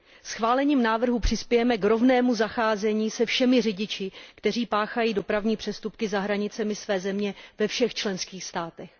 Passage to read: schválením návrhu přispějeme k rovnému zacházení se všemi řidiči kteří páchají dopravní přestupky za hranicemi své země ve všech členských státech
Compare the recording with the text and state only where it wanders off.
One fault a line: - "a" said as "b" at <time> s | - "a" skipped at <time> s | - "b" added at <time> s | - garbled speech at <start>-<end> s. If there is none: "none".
none